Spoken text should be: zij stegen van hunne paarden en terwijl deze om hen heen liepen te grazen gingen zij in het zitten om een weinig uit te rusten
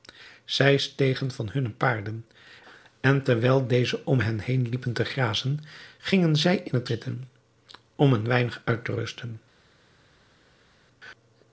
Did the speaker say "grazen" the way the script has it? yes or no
yes